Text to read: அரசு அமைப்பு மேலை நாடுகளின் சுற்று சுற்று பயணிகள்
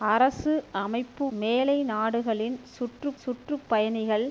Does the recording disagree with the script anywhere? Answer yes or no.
no